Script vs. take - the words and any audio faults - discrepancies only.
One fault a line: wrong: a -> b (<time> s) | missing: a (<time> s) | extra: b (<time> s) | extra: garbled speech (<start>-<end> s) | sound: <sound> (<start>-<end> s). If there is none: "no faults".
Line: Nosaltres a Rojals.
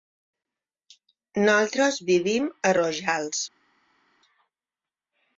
extra: vivim (2.1 s)